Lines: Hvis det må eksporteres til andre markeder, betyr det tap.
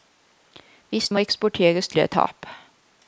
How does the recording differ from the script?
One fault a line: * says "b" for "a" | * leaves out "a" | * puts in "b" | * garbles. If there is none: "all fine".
* leaves out "det"
* leaves out "andre markeder betyr"